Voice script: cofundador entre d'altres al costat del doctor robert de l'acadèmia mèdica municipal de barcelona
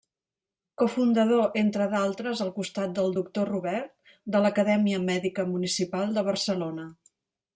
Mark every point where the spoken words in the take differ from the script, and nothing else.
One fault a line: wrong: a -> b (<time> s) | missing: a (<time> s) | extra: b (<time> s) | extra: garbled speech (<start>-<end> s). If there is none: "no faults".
no faults